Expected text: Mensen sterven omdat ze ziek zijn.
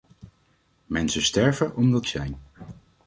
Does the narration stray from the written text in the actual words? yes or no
yes